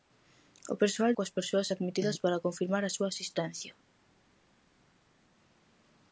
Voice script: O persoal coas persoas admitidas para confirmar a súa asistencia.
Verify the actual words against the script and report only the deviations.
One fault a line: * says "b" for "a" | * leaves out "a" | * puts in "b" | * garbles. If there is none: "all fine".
all fine